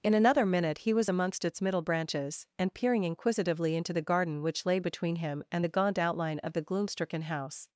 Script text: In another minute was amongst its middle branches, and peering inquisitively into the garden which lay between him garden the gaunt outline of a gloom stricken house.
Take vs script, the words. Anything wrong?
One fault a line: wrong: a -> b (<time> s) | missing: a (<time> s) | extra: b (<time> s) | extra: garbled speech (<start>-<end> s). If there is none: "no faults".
extra: he (0.8 s)
wrong: garden -> and (5.5 s)
wrong: a -> the (6.5 s)